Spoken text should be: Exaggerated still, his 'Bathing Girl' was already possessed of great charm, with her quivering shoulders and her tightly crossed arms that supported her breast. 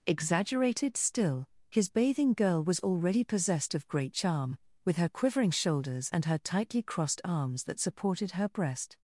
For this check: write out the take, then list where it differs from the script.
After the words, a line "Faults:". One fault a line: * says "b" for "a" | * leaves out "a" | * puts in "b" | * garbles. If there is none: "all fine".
Exaggerated still, his 'Bathing Girl' was already possessed of great charm, with her quivering shoulders and her tightly crossed arms that supported her breast.
Faults:
all fine